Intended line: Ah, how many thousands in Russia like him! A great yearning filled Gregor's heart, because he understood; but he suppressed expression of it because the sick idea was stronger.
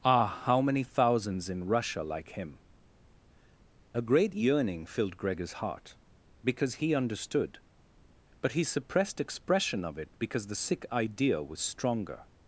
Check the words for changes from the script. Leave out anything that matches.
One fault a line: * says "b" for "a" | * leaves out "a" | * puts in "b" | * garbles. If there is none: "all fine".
all fine